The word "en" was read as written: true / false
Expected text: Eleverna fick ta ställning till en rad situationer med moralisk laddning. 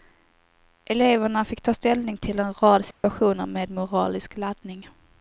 true